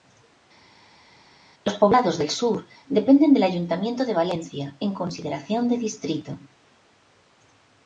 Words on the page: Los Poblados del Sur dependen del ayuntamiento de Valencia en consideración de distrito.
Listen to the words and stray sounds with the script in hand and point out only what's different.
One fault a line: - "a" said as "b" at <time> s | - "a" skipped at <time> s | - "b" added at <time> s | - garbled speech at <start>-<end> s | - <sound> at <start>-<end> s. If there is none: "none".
none